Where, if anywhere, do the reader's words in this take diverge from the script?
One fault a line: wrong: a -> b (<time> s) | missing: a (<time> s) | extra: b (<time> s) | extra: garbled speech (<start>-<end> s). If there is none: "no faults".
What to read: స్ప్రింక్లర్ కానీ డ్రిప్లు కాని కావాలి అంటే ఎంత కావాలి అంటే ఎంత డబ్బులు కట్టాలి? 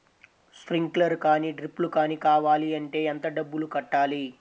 missing: కావాలి అంటే ఎంత (3.3 s)